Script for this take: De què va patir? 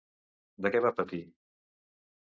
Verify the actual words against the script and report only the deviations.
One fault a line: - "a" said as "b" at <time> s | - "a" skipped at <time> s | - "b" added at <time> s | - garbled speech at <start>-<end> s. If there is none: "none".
none